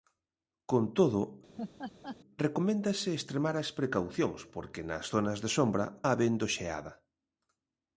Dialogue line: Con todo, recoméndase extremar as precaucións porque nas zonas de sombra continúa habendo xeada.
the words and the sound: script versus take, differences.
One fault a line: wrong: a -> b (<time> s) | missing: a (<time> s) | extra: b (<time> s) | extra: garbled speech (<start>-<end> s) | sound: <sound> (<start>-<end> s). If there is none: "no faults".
sound: laugh (1.6-2.2 s)
missing: continúa (5.9 s)